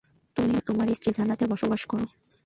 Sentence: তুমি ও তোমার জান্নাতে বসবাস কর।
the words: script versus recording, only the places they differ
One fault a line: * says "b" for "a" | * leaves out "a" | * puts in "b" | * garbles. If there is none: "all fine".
* puts in "স্ত্রী"